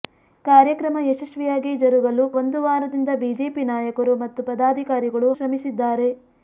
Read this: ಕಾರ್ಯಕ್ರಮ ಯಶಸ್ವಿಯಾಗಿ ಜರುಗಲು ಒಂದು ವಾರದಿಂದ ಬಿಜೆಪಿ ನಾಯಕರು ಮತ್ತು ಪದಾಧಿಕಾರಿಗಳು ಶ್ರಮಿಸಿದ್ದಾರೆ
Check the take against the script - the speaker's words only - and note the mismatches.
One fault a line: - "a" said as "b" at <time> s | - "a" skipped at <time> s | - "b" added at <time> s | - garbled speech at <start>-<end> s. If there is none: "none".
none